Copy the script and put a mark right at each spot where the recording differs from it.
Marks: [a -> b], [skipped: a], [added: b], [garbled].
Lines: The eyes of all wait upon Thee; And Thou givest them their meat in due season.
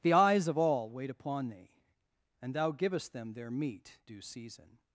The eyes of all wait upon Thee; And Thou givest them their meat [skipped: in] due season.